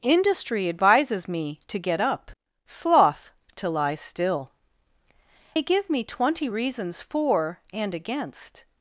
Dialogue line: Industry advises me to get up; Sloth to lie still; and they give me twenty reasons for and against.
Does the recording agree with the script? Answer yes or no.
no